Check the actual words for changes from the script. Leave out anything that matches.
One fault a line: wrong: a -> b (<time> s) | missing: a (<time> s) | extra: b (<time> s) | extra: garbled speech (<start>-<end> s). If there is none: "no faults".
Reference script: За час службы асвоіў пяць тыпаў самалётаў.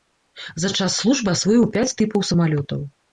no faults